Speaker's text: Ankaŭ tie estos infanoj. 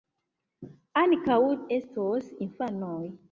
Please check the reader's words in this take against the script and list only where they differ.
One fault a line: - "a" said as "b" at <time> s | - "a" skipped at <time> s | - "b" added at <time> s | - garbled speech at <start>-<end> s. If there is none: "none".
- "tie" skipped at 1.4 s